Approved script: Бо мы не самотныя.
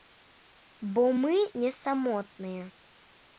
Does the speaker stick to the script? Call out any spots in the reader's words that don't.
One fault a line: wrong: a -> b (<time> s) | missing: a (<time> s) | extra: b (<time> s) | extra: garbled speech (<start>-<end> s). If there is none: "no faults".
no faults